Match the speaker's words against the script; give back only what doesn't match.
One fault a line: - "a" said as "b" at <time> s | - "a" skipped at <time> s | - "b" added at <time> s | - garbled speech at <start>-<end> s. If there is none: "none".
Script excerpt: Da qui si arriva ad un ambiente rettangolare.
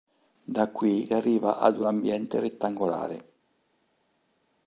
- "si" skipped at 1.1 s